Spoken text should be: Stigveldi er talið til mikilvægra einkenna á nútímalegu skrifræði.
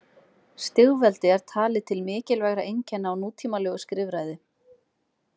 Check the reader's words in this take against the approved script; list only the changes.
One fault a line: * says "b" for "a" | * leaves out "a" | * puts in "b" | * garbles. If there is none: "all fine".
all fine